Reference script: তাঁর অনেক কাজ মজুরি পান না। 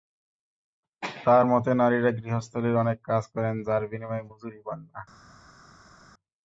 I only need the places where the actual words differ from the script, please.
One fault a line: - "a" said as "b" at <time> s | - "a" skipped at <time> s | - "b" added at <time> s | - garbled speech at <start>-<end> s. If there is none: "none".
- "মতে নারীরা গৃহস্থালির" added at 1.4 s
- "করেন যার বিনিময়ে" added at 3.3 s